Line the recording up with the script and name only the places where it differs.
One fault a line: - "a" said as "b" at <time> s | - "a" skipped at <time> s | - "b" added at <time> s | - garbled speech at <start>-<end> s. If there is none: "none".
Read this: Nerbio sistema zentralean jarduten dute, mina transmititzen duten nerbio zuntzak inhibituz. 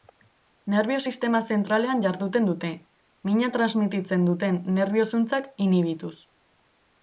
none